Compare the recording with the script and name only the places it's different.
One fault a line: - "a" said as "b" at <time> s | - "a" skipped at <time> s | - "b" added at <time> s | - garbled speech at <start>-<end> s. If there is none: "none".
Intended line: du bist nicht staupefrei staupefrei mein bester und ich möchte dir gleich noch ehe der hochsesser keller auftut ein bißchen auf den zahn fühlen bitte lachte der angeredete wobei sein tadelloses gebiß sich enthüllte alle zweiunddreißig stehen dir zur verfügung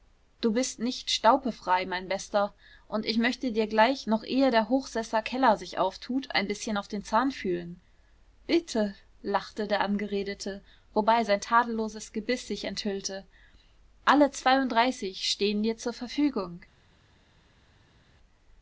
- "staupefrei" skipped at 1.9 s
- "sich" added at 5.6 s